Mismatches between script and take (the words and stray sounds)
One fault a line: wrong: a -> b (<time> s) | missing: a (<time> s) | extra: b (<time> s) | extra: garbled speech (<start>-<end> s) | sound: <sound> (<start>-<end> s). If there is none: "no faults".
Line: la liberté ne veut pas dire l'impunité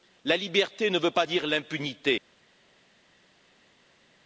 no faults